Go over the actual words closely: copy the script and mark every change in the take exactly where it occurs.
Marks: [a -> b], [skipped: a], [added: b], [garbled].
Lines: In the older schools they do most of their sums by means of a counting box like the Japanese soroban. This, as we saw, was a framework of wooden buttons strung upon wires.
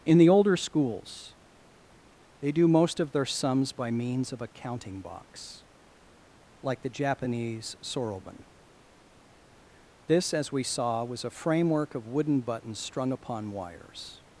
In the older schools they do most of their sums by means of a counting box like the Japanese soroban. This, as we saw, was a framework of wooden buttons strung upon wires.